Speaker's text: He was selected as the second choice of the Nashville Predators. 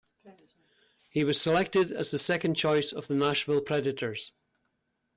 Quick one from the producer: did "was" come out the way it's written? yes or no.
yes